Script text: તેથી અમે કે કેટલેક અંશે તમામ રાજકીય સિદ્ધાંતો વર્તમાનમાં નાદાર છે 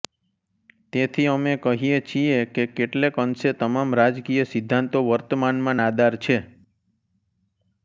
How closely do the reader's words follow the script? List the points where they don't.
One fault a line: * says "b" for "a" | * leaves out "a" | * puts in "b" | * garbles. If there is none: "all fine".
* puts in "કહીએ છીએ"